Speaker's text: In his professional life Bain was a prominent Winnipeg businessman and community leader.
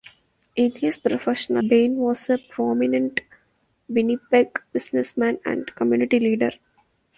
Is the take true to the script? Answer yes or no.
no